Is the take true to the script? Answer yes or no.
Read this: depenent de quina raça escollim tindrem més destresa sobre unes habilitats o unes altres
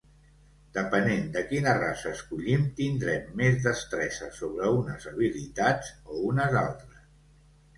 yes